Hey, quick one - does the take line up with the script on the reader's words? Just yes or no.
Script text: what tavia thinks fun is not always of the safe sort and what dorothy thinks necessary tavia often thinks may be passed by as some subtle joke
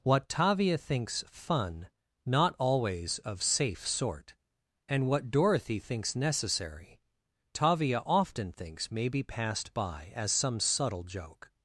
no